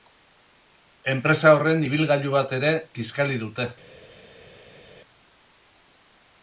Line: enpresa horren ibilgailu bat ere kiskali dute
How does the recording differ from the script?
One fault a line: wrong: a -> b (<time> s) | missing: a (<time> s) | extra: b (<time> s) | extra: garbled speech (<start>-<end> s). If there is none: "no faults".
no faults